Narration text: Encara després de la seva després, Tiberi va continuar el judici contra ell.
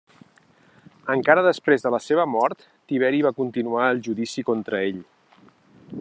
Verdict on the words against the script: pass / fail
fail